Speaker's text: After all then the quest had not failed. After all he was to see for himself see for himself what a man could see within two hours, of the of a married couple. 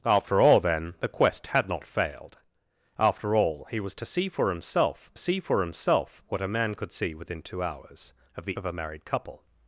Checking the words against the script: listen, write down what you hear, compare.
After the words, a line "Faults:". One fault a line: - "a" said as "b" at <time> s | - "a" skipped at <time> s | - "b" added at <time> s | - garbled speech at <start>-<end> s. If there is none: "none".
After all then the quest had not failed. After all he was to see for himself see for himself what a man could see within two hours, of the of a married couple.
Faults:
none